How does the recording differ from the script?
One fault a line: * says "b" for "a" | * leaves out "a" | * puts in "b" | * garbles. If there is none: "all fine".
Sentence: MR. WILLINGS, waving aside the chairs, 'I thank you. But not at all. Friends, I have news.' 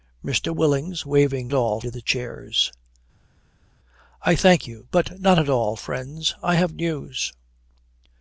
* says "all" for "aside"